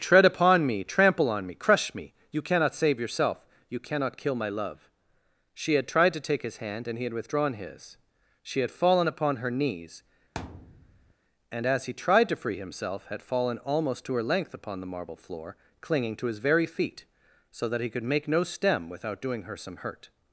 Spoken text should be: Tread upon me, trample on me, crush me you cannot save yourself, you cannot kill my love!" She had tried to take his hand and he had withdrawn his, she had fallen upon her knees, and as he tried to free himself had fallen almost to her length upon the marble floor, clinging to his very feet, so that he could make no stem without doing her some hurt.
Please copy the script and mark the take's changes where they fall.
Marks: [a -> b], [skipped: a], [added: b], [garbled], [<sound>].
Tread upon me, trample on me, crush me you cannot save yourself, you cannot kill my love!" She had tried to take his hand and he had withdrawn his, she had fallen upon her knees, [thud] and as he tried to free himself had fallen almost to her length upon the marble floor, clinging to his very feet, so that he could make no stem without doing her some hurt.